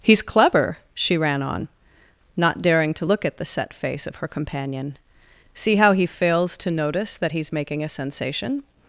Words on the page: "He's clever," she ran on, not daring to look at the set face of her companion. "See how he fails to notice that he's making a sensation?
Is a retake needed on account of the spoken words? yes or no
no